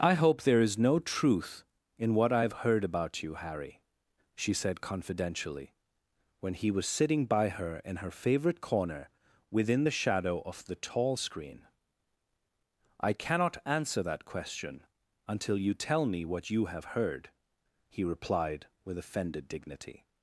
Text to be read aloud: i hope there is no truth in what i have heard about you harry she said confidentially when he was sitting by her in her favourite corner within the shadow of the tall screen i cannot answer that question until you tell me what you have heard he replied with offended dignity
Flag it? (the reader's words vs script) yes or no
no